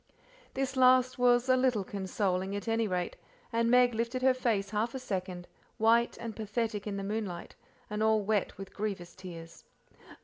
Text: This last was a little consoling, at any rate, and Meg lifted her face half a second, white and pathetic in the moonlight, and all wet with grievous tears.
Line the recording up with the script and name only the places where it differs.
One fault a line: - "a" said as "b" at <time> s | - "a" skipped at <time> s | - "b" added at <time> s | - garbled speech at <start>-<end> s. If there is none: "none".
none